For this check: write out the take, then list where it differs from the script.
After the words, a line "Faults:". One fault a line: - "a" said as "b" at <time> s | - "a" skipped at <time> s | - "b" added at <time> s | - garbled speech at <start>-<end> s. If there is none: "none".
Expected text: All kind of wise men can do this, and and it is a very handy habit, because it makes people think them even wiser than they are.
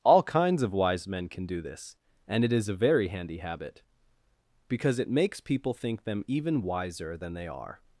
All kinds of wise men can do this, and it is a very handy habit, because it makes people think them even wiser than they are.
Faults:
- "kind" said as "kinds" at 0.2 s
- "and" skipped at 2.4 s